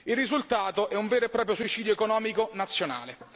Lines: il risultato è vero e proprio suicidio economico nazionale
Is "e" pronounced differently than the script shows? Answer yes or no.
no